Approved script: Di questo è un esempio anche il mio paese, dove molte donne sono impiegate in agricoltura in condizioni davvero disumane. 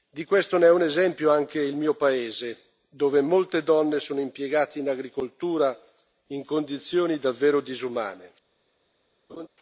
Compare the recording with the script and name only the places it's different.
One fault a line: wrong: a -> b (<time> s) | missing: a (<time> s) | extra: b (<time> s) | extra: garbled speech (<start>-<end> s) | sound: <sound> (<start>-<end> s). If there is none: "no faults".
sound: laugh (9.3-9.5 s)